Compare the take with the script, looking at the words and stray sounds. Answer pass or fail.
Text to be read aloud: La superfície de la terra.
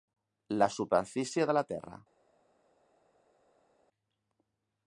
pass